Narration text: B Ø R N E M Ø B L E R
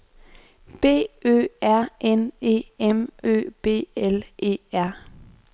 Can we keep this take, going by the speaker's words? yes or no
yes